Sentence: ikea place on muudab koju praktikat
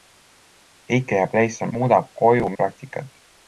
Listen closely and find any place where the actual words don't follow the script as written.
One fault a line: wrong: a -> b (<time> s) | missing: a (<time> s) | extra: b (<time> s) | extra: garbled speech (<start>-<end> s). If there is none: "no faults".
no faults